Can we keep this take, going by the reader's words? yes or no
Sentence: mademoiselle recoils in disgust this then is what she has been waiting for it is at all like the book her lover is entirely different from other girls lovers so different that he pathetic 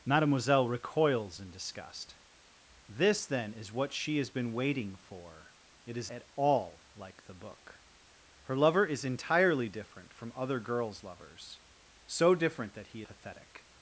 yes